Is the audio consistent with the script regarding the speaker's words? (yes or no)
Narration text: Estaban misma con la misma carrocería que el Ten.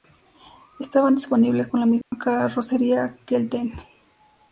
no